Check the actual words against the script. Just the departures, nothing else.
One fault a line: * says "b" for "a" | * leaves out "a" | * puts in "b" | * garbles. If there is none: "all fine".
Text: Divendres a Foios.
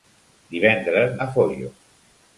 all fine